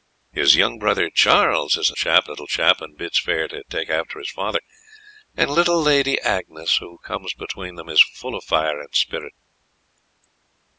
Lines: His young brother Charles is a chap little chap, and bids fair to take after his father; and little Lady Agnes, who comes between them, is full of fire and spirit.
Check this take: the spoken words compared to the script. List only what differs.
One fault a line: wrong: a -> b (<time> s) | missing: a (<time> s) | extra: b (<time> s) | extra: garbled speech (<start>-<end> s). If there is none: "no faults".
no faults